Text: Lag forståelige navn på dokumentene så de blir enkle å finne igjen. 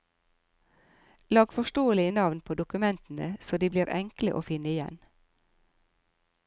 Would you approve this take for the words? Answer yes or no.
yes